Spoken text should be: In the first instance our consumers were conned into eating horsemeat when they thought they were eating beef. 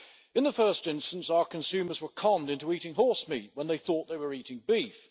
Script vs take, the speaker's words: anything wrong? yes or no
no